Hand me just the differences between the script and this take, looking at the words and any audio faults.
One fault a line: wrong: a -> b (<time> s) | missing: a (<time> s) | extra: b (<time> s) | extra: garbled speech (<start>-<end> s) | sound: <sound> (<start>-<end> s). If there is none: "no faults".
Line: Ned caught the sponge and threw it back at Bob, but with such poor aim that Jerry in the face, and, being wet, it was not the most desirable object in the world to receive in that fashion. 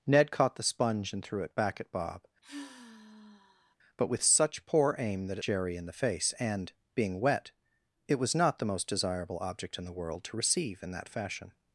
sound: sigh (2.4-3.8 s)